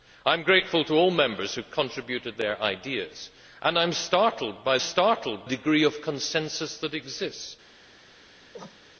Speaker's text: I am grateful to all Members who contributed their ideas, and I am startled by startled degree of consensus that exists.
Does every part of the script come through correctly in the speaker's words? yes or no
yes